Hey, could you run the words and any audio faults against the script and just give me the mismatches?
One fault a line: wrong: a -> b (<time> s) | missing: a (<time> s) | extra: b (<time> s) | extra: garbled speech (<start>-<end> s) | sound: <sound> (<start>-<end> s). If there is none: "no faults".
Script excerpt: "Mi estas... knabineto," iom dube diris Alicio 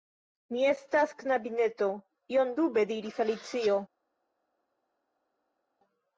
no faults